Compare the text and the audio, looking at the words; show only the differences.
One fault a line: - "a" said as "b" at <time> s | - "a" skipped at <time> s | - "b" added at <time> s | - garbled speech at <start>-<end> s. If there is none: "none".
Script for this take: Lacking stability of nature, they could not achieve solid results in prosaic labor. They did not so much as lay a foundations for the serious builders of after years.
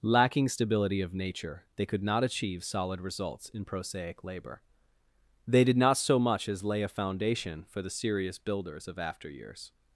- "foundations" said as "foundation" at 6.9 s